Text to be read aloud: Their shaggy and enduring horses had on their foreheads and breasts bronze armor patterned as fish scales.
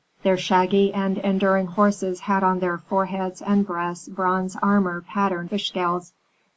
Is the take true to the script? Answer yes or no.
no